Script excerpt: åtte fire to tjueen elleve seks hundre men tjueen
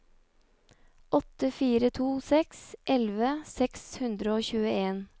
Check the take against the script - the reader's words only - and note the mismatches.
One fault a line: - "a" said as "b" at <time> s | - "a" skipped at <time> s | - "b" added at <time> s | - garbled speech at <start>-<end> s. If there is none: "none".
- "tjueen" said as "seks" at 2.2 s
- "men" said as "og" at 4.4 s